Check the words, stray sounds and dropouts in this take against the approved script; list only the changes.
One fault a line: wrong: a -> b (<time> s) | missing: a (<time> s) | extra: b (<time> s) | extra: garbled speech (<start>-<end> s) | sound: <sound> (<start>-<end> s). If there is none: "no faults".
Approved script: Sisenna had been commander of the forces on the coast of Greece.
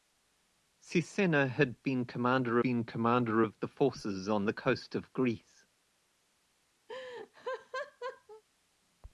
extra: been commander (2.6 s)
sound: laugh (6.9-8.4 s)